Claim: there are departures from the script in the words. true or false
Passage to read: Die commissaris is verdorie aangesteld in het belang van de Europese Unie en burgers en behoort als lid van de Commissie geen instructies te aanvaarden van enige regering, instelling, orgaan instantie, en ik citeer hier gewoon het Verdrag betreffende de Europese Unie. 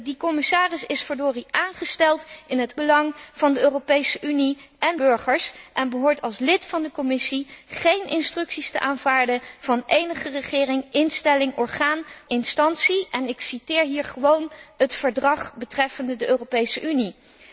false